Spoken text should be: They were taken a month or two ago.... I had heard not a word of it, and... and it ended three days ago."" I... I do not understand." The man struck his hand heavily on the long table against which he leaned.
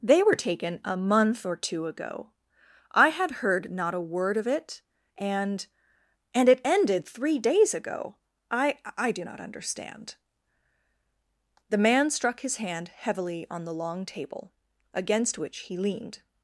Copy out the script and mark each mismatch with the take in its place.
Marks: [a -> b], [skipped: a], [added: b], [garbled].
They were taken a month or two ago.... I had heard not a word of it, and... and it ended three days ago."" I... I do not understand." The man struck his hand heavily on the long table against which he leaned.